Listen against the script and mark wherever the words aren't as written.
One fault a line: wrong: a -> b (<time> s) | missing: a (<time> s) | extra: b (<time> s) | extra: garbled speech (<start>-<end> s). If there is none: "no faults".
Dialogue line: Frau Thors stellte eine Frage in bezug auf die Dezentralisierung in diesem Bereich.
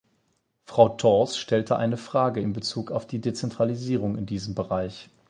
no faults